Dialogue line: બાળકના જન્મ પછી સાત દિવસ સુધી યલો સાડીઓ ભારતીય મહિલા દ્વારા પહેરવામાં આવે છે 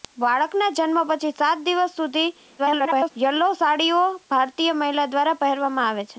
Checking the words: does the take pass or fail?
fail